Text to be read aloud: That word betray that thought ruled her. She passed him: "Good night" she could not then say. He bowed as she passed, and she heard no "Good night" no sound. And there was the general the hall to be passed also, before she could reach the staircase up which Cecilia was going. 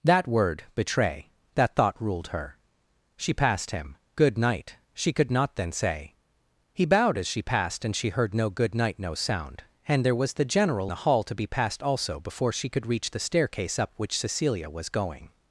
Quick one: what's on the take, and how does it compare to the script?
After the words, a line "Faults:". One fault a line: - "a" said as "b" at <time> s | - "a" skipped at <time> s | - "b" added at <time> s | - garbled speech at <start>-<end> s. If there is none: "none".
That word betray that thought ruled her. She passed him: "Good night" she could not then say. He bowed as she passed, and she heard no "Good night" no sound. And there was the general the hall to be passed also, before she could reach the staircase up which Cecilia was going.
Faults:
none